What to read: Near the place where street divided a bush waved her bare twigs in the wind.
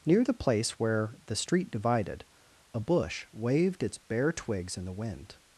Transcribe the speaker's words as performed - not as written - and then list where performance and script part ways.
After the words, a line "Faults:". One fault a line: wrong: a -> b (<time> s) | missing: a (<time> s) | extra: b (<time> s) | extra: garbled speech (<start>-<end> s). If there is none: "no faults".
Near the place where the street divided a bush waved its bare twigs in the wind.
Faults:
extra: the (1.3 s)
wrong: her -> its (3.8 s)